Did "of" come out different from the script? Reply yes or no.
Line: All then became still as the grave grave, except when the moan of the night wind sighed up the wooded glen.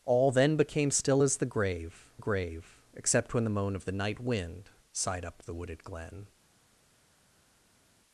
no